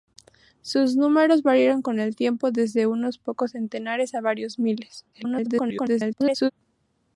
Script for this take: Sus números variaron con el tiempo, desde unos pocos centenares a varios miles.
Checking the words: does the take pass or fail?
fail